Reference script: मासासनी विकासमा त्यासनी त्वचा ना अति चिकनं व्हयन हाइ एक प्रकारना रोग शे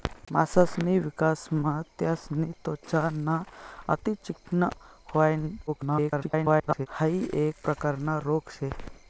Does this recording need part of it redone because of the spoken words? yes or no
yes